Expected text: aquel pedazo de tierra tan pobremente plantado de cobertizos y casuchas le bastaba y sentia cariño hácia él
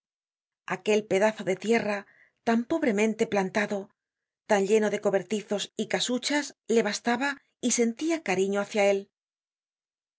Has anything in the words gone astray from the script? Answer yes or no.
yes